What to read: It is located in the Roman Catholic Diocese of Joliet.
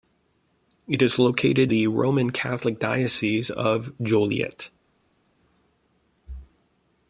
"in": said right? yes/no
no